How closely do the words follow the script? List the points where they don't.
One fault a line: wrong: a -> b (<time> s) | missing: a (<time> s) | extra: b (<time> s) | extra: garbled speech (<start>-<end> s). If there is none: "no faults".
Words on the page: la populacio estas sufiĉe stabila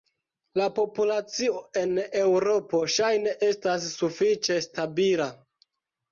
extra: en eŭropo ŝajne (1.8 s)